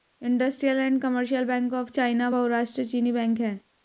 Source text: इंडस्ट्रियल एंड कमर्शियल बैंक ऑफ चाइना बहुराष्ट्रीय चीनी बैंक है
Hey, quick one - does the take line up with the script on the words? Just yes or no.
yes